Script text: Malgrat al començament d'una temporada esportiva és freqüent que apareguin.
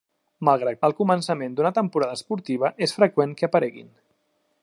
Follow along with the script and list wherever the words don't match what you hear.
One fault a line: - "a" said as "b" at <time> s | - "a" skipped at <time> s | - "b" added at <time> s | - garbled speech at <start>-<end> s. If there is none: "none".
none